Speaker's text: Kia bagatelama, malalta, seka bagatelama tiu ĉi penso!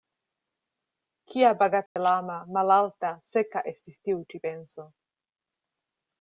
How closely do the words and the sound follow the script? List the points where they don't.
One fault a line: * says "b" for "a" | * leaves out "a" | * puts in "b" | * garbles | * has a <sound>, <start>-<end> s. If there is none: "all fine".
* has a dropout, 1.9-2.0 s
* says "estis" for "bagatelama"